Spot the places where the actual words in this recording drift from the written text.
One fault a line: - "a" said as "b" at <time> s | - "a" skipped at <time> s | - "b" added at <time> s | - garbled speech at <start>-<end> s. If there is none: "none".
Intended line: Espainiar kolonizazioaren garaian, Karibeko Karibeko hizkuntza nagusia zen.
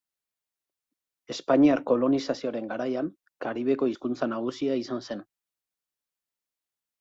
- "Karibeko" skipped at 3.9 s
- "izan" added at 4.8 s